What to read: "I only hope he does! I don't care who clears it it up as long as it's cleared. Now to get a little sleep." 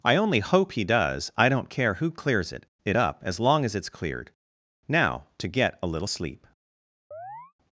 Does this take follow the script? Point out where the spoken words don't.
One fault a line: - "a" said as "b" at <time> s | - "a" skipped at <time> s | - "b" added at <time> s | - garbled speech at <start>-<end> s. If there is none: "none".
none